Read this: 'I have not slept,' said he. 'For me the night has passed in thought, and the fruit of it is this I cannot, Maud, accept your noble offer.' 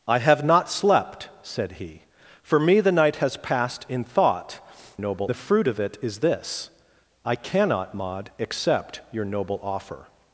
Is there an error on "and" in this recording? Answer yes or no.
yes